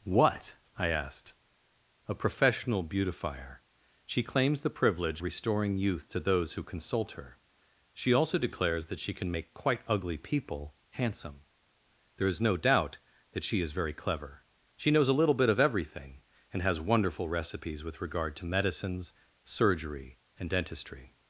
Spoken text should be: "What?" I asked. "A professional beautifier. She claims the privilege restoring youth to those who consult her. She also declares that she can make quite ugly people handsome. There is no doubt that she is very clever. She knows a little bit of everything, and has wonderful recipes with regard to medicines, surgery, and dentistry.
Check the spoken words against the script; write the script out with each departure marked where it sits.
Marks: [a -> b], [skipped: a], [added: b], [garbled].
"What?" I asked. "A professional beautifier. She claims the privilege restoring youth to those who consult her. She also declares that she can make quite ugly people handsome. There is no doubt that she is very clever. She knows a little bit of everything, and has wonderful recipes with regard to medicines, surgery, and dentistry.